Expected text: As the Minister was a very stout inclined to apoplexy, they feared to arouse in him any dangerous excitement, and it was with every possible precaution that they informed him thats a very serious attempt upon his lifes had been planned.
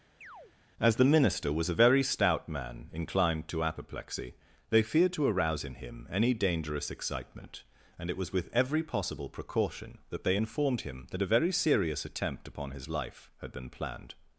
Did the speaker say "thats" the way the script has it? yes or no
no